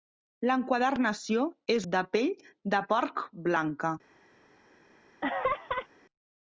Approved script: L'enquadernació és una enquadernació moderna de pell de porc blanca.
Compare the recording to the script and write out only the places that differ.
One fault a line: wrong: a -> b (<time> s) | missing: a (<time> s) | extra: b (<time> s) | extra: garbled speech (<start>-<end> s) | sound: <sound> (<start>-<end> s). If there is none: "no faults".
missing: una enquadernació moderna (1.8 s)
sound: laugh (5.2-5.9 s)